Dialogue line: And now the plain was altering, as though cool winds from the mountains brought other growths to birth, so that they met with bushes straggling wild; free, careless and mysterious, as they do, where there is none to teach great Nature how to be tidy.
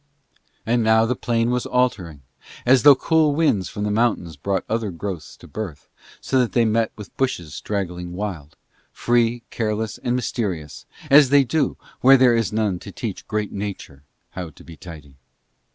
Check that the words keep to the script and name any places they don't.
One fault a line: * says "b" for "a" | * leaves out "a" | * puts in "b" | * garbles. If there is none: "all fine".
all fine